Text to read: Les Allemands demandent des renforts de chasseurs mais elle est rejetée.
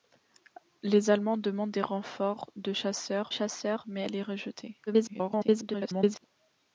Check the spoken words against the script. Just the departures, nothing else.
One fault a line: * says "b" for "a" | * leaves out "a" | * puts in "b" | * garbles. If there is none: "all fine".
* puts in "chasseurs"
* garbles